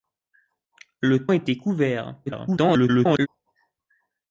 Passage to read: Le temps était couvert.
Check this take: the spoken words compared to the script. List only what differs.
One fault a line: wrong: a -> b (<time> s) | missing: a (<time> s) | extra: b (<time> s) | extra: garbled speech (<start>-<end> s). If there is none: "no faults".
missing: temps (1.3 s)
extra: garbled speech (2.3-3.3 s)